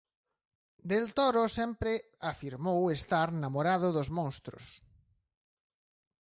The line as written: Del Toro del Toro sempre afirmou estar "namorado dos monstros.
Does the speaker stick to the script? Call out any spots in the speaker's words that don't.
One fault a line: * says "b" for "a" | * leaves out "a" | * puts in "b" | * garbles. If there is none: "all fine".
* leaves out "del Toro"